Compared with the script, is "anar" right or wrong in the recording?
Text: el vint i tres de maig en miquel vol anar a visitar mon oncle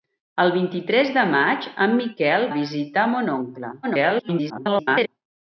wrong